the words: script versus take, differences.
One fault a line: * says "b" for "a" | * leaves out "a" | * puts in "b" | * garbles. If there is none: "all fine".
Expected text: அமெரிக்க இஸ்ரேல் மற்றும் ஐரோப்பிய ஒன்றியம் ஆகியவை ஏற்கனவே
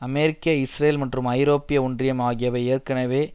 all fine